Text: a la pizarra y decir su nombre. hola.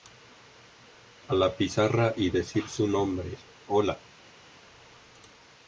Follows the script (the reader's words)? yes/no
yes